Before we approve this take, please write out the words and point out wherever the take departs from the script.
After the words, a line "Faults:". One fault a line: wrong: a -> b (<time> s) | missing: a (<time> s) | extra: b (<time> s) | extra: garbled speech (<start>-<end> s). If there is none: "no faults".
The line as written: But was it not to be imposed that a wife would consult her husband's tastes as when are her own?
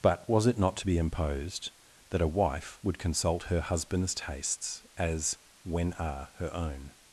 But was it not to be imposed that a wife would consult her husband's tastes as when are her own?
Faults:
no faults